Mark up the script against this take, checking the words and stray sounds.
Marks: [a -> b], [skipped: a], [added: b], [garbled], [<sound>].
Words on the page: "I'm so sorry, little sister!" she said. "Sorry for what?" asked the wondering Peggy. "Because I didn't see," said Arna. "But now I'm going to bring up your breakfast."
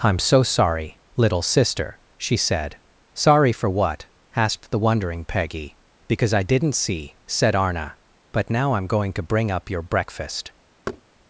"I'm so sorry, little sister!" she said. "Sorry for what?" asked the wondering Peggy. "Because I didn't see," said Arna. "But now I'm going to bring up your breakfast." [thud]